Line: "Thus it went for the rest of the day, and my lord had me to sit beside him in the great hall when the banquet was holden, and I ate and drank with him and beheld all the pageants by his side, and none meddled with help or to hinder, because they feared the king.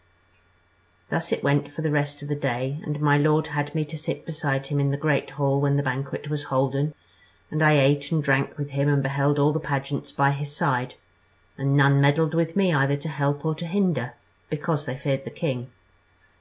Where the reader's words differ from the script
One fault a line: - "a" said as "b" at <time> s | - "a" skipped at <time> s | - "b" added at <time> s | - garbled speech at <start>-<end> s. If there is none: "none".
- "me either to" added at 12.6 s